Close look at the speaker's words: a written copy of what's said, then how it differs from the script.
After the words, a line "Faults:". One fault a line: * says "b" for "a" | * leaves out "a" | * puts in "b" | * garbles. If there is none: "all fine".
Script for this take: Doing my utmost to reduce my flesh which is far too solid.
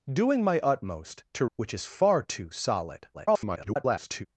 Doing my utmost to which is far too solid. [garbled]
Faults:
* leaves out "reduce my flesh"
* garbles